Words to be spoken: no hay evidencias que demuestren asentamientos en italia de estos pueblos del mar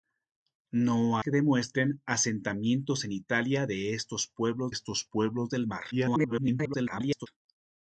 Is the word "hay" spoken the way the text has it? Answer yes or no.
no